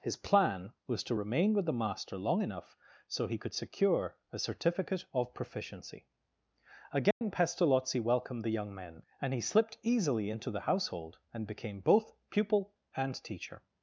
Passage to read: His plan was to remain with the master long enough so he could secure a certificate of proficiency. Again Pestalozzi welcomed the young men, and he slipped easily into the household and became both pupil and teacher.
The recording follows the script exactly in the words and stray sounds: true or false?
false